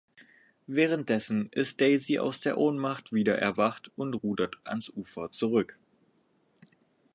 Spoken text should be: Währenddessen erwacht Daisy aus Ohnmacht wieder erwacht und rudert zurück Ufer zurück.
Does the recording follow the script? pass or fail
fail